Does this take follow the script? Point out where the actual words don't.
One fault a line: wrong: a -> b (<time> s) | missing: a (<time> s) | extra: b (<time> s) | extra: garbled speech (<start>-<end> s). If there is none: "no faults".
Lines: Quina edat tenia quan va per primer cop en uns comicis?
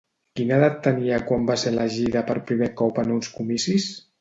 extra: ser elegida (1.6 s)